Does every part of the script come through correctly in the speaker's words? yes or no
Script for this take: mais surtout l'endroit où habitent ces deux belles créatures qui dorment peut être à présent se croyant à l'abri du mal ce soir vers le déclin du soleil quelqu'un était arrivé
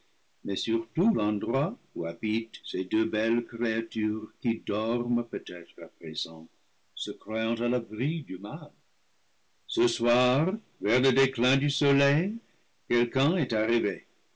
no